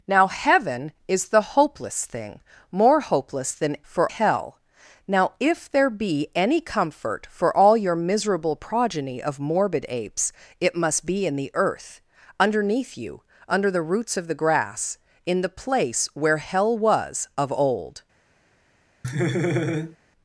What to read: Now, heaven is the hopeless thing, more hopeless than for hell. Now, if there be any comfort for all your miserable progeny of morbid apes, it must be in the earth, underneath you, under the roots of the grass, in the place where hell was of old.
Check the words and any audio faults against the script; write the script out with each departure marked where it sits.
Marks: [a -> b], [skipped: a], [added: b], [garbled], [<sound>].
Now, heaven is the hopeless thing, more hopeless than for hell. Now, if there be any comfort for all your miserable progeny of morbid apes, it must be in the earth, underneath you, under the roots of the grass, in the place where hell was of old. [laugh]